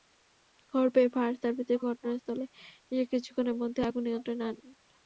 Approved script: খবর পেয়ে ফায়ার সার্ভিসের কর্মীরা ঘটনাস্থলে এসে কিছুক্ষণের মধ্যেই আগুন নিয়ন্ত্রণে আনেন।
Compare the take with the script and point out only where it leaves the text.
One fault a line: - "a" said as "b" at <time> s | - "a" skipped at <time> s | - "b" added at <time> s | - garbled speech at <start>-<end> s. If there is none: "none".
- "কর্মীরা" skipped at 1.8 s